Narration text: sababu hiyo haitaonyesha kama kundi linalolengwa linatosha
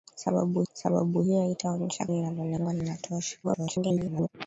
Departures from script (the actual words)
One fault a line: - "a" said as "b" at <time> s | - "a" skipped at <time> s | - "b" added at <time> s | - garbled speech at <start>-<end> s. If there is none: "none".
- "sababu" added at 0.7 s
- "kama kundi" skipped at 2.1 s
- garbled speech at 3.4-4.3 s